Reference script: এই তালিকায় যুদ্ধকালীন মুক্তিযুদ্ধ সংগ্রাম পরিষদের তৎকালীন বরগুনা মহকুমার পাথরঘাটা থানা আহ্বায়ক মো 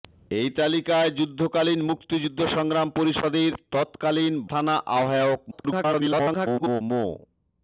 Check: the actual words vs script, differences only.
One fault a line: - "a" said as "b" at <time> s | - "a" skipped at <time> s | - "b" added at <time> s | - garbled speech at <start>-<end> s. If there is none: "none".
- "বরগুনা মহকুমার পাথরঘাটা" skipped at 4.3 s
- garbled speech at 5.5-6.8 s